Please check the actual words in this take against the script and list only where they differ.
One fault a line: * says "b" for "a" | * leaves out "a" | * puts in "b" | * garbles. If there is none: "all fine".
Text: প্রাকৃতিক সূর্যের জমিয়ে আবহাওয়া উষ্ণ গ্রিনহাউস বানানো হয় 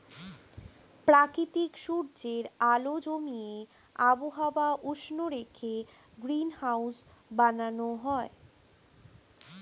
* puts in "আলো"
* puts in "রেখে"